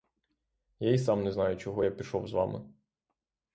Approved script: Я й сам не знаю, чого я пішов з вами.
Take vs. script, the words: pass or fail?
pass